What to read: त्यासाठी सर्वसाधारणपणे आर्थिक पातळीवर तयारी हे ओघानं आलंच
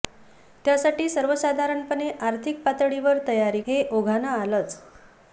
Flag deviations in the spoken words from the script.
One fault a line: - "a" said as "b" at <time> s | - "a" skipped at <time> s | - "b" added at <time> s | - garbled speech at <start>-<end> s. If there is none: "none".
none